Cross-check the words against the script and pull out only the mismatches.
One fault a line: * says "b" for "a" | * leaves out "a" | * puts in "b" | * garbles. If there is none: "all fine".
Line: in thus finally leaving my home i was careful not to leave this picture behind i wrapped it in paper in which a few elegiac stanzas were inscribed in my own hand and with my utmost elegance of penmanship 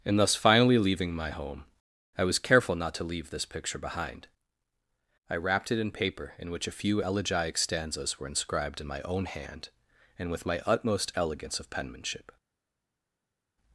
all fine